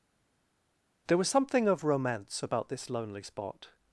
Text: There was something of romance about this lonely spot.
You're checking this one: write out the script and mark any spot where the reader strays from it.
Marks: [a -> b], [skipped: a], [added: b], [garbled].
There was something of romance about this lonely spot.